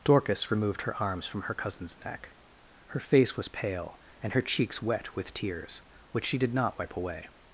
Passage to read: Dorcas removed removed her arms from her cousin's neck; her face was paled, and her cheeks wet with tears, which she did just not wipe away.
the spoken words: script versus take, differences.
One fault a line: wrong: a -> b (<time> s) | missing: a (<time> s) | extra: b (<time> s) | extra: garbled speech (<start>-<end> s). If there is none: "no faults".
missing: removed (0.8 s)
wrong: paled -> pale (3.5 s)
missing: just (6.5 s)